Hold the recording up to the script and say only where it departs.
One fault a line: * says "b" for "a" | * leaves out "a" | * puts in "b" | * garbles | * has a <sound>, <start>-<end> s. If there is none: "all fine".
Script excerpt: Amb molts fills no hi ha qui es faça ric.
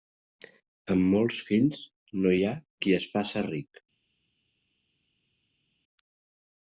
all fine